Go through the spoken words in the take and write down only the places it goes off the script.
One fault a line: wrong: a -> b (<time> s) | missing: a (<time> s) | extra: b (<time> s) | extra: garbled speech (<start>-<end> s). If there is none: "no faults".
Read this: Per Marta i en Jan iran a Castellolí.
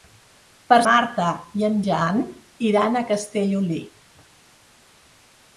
no faults